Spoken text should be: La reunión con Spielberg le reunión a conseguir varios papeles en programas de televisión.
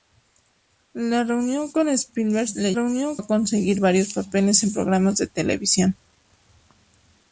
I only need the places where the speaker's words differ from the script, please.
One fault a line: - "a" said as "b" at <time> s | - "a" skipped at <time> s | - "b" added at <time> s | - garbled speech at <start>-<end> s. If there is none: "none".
none